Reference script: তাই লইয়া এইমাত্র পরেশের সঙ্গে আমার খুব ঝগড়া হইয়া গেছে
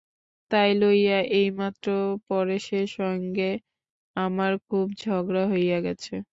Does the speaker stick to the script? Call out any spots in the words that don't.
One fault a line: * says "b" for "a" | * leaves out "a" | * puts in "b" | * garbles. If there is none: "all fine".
all fine